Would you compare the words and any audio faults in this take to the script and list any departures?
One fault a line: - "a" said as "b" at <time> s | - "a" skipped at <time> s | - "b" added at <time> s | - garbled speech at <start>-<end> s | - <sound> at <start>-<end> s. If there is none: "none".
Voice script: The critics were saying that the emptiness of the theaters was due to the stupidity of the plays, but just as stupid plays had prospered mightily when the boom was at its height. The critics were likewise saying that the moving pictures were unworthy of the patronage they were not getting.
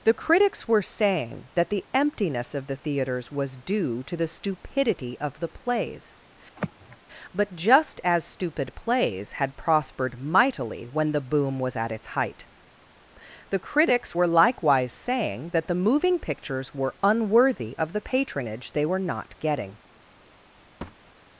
- sigh at 6.6-7.0 s
- thud at 20.8-21.1 s